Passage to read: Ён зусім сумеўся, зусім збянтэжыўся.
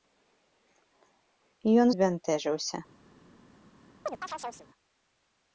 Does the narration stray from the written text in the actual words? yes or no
yes